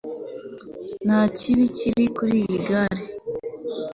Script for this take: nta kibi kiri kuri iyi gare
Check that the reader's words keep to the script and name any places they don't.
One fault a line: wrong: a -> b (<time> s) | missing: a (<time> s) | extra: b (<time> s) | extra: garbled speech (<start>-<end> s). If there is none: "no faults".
no faults